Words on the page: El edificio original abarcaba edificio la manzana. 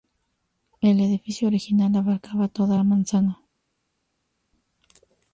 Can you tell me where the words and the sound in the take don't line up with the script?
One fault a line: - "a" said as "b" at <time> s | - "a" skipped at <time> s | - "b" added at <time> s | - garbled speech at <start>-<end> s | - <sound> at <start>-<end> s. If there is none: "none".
- "edificio" said as "toda" at 2.5 s